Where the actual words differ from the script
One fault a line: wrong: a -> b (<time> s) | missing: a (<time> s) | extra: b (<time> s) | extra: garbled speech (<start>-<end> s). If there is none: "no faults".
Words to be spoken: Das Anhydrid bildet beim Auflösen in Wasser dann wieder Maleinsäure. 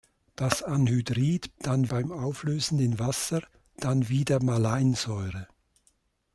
wrong: bildet -> dann (1.6 s)